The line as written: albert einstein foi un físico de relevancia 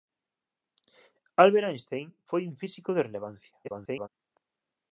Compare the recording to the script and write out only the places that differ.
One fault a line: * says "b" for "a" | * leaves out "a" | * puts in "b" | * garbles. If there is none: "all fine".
* garbles